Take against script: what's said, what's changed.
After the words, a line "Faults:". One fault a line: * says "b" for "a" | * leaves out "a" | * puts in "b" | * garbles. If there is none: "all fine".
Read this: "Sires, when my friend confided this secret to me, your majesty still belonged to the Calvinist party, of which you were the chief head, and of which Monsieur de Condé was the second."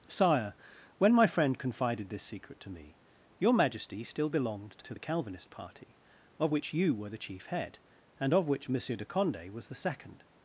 "Sire, when my friend confided this secret to me, your majesty still belonged to the Calvinist party, of which you were the chief head, and of which Monsieur de Condé was the second."
Faults:
* says "Sire" for "Sires"